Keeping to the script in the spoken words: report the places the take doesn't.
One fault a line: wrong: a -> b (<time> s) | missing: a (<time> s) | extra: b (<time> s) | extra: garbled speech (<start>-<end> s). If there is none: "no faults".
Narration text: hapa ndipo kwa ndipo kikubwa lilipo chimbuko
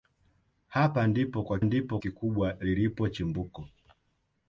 no faults